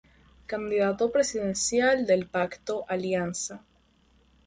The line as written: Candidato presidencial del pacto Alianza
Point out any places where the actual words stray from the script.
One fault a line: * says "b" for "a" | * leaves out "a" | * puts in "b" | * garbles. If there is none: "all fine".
all fine